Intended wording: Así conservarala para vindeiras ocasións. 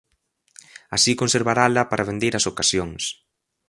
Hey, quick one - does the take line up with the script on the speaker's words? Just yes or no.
yes